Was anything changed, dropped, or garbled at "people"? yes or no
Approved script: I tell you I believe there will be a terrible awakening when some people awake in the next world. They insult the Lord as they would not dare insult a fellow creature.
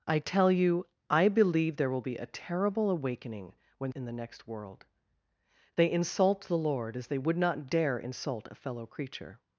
yes